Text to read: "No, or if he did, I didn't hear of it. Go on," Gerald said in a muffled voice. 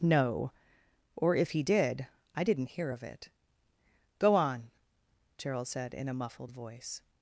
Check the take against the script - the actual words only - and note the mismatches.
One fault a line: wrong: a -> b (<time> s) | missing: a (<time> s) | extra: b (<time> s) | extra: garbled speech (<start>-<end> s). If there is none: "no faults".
no faults